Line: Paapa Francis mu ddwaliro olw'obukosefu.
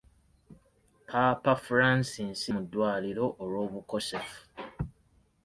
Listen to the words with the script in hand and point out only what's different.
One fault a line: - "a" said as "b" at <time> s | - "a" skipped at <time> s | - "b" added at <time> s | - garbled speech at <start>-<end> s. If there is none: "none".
none